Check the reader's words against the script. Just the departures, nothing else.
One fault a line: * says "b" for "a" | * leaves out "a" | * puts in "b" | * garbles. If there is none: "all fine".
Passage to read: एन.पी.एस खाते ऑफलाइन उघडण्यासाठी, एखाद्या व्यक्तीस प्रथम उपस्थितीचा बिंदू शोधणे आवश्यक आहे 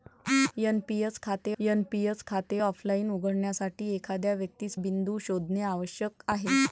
* puts in "एन.पी.एस खाते"
* leaves out "प्रथम उपस्थितीचा"